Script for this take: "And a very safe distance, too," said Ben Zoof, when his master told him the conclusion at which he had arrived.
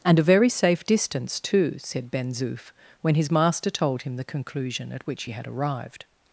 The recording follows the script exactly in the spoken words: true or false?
true